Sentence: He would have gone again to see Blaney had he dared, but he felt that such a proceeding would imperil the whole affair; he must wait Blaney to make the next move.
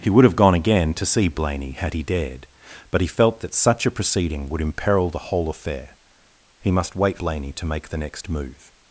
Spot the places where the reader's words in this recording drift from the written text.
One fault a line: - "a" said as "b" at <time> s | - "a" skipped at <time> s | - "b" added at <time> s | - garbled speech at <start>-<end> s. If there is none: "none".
none